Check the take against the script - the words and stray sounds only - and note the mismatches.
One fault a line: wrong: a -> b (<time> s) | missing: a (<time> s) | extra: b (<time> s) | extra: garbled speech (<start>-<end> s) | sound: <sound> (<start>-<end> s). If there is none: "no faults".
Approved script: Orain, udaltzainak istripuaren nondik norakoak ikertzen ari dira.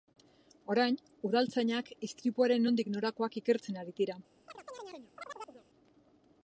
sound: chirp (4.5-5.7 s)